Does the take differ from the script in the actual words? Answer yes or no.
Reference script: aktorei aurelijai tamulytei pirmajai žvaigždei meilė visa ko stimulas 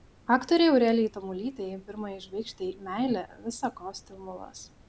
no